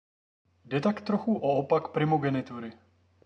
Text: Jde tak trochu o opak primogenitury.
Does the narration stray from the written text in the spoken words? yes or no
no